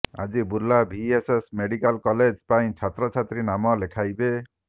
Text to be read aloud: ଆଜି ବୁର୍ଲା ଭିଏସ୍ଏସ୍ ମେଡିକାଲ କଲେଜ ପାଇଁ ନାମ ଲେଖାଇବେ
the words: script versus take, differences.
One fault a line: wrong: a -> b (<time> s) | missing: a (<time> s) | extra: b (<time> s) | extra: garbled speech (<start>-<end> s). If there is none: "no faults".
extra: ଛାତ୍ରଛାତ୍ରୀ (2.8 s)